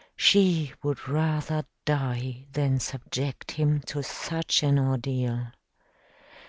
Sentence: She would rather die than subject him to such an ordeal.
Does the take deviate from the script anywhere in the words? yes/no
no